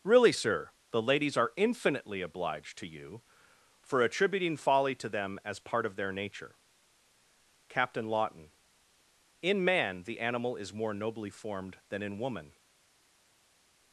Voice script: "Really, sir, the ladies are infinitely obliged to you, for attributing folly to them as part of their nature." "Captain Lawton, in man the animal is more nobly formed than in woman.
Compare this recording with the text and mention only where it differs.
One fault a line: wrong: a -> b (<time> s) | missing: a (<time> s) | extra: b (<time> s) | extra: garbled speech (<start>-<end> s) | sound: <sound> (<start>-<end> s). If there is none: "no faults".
no faults